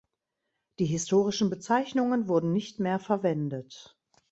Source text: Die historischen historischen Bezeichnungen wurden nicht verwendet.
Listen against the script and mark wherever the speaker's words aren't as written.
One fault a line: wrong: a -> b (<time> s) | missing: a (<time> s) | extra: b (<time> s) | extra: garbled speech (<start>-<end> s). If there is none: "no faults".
missing: historischen (1.5 s)
extra: mehr (2.8 s)